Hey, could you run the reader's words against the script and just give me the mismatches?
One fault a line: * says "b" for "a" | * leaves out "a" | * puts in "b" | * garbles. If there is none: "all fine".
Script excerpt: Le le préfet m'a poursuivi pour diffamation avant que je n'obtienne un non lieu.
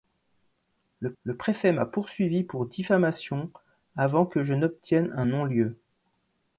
all fine